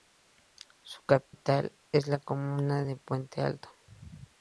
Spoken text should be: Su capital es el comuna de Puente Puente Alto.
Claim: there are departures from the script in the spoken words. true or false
true